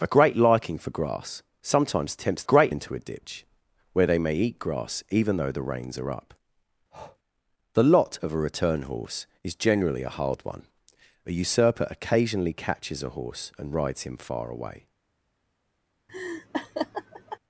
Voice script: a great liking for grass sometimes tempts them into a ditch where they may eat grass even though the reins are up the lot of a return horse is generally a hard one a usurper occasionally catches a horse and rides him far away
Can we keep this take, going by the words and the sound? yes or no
no